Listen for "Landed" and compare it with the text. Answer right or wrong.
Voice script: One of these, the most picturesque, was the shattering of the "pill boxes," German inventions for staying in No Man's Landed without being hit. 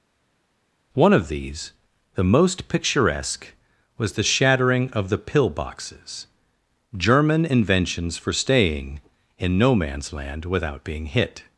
wrong